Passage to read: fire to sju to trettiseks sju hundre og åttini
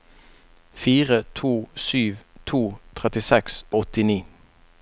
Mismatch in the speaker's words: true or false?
true